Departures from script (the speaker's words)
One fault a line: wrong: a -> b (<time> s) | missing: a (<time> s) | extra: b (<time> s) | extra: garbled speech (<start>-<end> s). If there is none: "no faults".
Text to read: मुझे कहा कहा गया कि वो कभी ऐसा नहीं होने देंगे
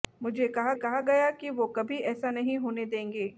no faults